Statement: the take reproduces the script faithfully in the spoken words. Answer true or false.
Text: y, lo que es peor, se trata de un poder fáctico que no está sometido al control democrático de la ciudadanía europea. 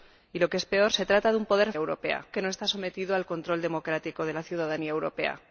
false